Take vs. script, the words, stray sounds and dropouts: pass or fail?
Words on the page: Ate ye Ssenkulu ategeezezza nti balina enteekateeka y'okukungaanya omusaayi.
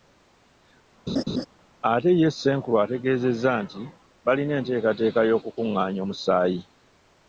fail